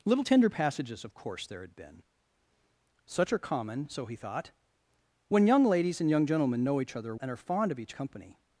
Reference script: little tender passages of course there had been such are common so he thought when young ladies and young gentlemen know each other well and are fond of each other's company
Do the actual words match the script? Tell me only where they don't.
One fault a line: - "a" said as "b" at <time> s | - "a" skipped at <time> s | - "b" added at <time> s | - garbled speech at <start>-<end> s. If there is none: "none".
- "well" skipped at 7.1 s
- "other's" skipped at 7.9 s